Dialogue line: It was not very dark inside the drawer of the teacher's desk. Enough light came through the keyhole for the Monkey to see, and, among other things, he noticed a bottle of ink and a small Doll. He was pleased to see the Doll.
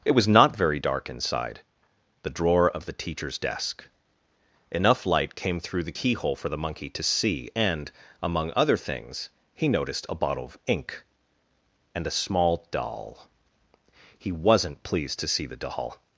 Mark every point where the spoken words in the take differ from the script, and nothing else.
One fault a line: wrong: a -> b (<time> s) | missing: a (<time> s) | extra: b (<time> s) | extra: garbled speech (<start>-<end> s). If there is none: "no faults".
wrong: was -> wasn't (14.3 s)